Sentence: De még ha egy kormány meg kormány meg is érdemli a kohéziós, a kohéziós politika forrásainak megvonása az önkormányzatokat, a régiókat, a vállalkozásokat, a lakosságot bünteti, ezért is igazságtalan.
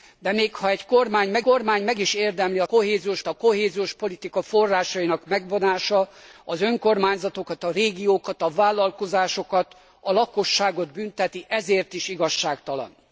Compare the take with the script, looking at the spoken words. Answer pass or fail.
pass